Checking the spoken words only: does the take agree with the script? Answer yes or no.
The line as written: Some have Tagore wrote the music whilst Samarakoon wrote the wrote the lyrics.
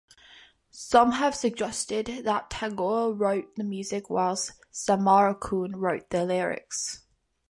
no